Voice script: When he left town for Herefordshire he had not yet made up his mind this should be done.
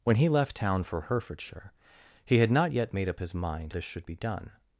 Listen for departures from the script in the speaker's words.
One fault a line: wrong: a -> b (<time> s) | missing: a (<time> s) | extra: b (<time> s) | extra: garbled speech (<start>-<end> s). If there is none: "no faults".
no faults